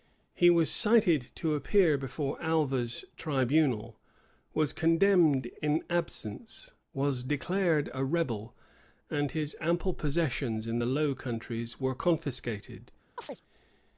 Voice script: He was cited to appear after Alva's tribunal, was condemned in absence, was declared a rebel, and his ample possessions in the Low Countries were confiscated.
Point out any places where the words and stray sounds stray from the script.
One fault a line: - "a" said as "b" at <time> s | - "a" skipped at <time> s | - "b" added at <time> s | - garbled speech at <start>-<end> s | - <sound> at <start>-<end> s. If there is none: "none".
- "after" said as "before" at 1.9 s
- chirp at 13.2-13.4 s